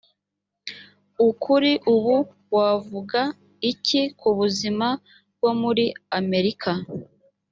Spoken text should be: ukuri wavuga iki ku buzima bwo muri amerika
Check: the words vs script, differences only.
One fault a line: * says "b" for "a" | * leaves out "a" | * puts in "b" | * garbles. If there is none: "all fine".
* puts in "ubu"